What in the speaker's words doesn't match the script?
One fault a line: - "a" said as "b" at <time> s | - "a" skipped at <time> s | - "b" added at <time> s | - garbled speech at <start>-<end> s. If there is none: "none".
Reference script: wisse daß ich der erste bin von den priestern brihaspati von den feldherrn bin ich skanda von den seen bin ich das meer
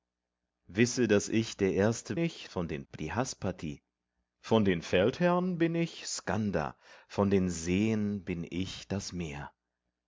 - "bin" said as "ich" at 2.2 s
- "priestern" skipped at 2.8 s